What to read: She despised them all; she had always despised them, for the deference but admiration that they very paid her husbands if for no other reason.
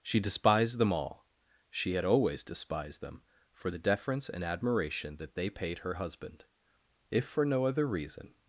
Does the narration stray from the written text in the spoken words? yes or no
yes